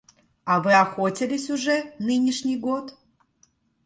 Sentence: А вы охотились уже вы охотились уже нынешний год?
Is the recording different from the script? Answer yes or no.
yes